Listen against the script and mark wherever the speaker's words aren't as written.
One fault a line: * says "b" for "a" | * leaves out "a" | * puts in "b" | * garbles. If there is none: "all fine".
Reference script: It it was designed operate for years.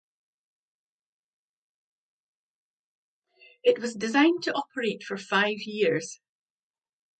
* leaves out "it"
* puts in "to"
* puts in "five"